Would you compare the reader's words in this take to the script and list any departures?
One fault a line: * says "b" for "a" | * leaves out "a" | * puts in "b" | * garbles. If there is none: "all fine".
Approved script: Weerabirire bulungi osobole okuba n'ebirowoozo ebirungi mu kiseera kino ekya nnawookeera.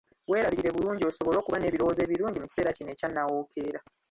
all fine